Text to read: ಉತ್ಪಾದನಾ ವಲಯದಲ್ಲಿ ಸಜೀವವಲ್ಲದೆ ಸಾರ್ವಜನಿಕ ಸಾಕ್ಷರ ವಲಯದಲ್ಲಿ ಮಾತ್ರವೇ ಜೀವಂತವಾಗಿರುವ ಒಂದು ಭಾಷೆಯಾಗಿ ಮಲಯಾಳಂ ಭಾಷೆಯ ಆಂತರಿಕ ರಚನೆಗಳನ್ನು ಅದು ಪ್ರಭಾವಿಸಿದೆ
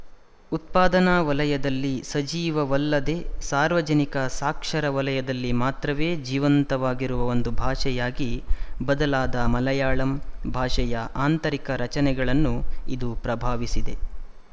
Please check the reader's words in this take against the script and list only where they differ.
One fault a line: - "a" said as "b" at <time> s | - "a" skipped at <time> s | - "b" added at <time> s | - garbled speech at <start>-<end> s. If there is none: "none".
- "ಬದಲಾದ" added at 8.8 s
- "ಅದು" said as "ಇದು" at 12.9 s